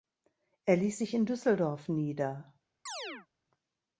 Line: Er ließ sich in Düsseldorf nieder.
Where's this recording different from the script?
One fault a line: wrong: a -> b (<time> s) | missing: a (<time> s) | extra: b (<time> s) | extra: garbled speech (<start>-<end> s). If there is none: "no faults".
no faults